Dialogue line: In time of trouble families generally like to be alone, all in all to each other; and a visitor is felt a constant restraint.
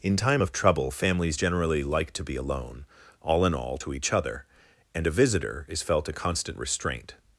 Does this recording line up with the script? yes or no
yes